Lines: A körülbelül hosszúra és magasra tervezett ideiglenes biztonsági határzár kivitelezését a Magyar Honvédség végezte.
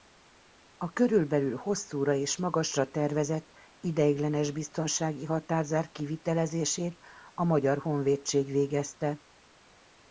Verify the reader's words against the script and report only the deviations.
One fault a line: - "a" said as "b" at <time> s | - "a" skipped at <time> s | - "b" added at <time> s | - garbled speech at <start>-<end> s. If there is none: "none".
none